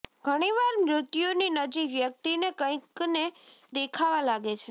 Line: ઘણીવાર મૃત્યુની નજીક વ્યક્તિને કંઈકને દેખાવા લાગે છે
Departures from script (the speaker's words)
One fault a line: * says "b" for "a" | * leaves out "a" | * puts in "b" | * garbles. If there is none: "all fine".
all fine